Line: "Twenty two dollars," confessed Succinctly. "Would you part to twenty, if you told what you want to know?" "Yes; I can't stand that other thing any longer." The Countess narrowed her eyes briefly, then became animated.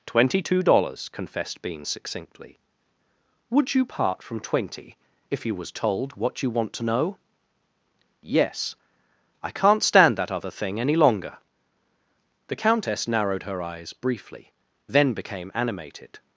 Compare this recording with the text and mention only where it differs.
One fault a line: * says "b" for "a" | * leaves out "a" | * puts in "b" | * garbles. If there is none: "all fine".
* puts in "Bean"
* says "from" for "to"
* puts in "was"